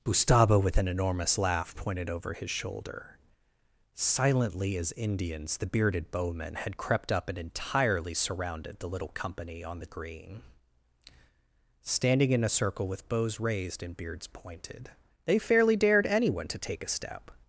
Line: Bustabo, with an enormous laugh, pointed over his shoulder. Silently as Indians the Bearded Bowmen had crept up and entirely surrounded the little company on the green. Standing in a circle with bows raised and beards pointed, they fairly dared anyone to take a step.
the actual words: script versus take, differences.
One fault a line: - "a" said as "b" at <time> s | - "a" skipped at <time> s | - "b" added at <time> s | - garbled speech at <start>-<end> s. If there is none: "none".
none